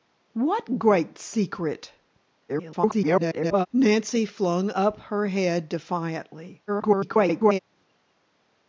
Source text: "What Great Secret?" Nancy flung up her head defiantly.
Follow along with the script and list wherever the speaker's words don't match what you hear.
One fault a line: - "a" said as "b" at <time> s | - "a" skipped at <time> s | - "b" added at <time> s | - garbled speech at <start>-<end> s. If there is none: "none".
- garbled speech at 2.5-3.7 s
- garbled speech at 6.7-7.6 s